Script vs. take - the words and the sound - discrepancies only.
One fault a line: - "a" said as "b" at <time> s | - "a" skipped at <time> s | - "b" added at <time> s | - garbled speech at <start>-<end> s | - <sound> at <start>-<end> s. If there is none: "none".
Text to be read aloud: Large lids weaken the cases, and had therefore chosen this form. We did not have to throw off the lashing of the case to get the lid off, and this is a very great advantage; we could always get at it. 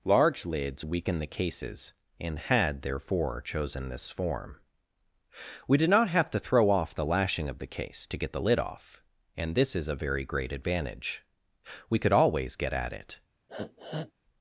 - sniff at 13.5-14.1 s